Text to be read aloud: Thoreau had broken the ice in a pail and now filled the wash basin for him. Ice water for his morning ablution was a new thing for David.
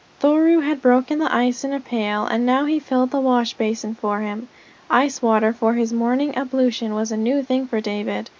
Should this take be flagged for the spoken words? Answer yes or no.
yes